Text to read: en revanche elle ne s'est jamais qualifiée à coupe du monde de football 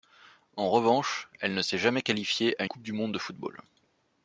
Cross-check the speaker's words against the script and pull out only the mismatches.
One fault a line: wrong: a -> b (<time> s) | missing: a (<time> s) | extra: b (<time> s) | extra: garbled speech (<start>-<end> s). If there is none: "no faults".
no faults